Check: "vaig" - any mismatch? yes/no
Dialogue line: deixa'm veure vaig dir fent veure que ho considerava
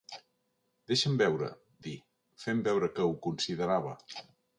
yes